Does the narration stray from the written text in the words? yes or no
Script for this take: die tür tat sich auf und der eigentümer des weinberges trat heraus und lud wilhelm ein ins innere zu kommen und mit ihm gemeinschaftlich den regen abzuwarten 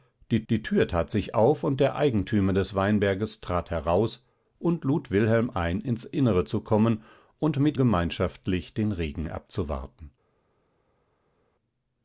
yes